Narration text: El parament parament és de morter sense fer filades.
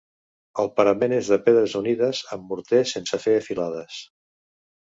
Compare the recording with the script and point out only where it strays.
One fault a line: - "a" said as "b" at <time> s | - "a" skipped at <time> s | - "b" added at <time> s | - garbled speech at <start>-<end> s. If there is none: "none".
- "parament" skipped at 1.1 s
- "pedres unides amb" added at 1.5 s